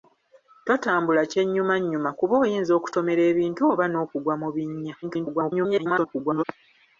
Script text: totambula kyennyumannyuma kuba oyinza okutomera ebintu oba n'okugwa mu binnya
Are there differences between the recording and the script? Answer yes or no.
yes